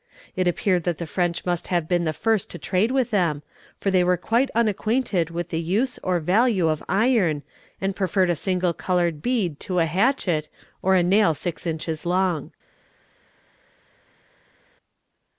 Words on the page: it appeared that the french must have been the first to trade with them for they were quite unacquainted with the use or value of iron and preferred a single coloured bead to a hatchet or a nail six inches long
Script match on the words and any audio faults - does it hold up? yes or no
yes